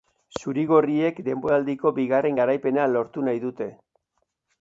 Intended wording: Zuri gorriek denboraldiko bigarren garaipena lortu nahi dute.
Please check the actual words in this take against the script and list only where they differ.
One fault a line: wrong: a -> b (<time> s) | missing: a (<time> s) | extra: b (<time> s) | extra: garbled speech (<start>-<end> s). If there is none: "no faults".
no faults